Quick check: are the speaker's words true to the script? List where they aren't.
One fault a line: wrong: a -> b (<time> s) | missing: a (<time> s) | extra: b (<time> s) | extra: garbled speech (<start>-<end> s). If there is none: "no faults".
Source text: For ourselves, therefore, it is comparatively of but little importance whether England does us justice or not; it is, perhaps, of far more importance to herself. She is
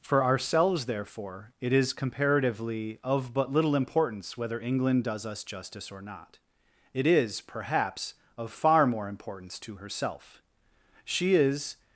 no faults